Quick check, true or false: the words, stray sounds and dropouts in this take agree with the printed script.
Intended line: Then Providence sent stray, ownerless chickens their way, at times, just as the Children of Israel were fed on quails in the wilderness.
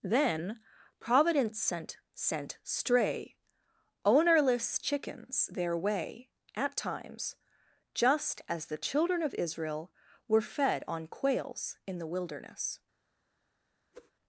false